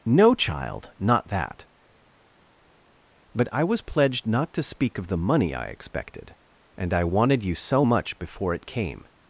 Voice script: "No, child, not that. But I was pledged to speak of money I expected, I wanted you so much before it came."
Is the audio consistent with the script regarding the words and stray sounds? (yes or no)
no